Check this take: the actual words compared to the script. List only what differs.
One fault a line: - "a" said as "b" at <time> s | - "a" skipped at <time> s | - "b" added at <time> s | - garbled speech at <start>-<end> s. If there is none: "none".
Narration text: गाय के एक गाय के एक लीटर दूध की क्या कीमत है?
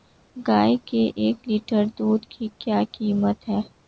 - "गाय के एक" skipped at 1.4 s